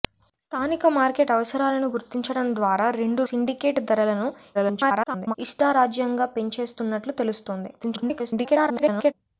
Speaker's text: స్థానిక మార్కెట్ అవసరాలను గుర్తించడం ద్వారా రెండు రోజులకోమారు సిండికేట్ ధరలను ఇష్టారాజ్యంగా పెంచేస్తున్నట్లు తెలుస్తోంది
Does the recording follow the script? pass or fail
fail